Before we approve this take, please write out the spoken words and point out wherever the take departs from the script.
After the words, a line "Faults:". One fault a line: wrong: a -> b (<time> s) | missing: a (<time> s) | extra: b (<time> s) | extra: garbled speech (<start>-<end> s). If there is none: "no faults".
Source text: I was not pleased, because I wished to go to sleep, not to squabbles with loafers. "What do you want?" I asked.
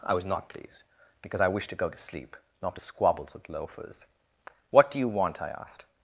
I was not pleased, because I wished to go to sleep, not to squabbles with loafers. "What do you want?" I asked.
Faults:
no faults